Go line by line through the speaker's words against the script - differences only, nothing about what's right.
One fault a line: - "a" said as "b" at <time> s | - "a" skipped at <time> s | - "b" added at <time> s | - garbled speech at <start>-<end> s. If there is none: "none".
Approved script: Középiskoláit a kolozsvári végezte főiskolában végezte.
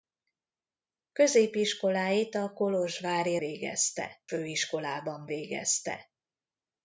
none